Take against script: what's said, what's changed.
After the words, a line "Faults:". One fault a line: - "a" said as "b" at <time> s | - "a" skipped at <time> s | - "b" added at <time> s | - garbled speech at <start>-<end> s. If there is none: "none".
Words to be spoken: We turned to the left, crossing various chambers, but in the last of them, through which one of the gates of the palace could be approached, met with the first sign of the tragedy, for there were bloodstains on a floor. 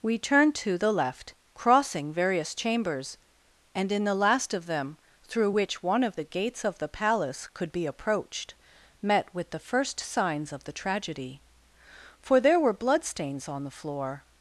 We turned to the left, crossing various chambers, and in the last of them, through which one of the gates of the palace could be approached, met with the first signs of the tragedy, for there were bloodstains on the floor.
Faults:
- "but" said as "and" at 3.8 s
- "sign" said as "signs" at 10.0 s
- "a" said as "the" at 13.6 s